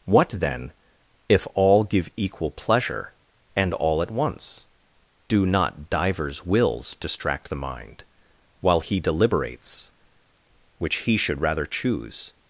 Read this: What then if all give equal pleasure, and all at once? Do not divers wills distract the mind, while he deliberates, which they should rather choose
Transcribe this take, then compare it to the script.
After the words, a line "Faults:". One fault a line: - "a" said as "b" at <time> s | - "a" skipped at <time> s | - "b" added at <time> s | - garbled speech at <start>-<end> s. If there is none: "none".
What then if all give equal pleasure, and all at once? Do not divers wills distract the mind, while he deliberates, which he should rather choose
Faults:
- "they" said as "he" at 11.0 s